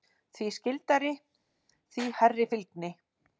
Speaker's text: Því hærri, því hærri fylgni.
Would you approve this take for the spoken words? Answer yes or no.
no